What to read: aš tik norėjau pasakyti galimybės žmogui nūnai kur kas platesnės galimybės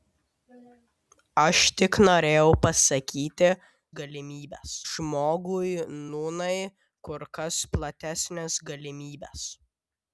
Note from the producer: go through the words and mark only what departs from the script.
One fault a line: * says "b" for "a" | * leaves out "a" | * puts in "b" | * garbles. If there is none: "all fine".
all fine